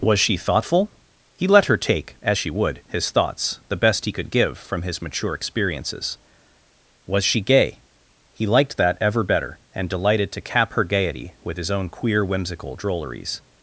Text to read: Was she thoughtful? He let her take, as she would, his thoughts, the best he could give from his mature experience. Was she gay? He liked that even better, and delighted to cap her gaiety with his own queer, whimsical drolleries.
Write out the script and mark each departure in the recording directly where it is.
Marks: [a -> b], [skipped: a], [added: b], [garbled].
Was she thoughtful? He let her take, as she would, his thoughts, the best he could give from his mature [experience. -> experiences] Was she gay? He liked that [even -> ever] better, and delighted to cap her gaiety with his own queer, whimsical drolleries.